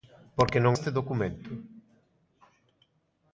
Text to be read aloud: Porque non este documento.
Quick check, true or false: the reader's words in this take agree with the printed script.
true